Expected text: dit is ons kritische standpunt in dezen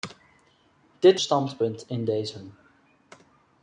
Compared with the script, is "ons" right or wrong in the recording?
wrong